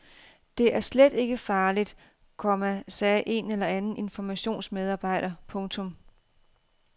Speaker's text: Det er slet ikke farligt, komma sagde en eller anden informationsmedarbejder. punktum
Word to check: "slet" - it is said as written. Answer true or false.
true